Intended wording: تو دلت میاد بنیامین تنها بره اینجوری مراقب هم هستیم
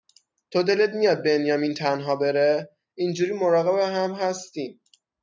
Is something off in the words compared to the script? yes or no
no